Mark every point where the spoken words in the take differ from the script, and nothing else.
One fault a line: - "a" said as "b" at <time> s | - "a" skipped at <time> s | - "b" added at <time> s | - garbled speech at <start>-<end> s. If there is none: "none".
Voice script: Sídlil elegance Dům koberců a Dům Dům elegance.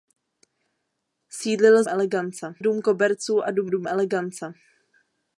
none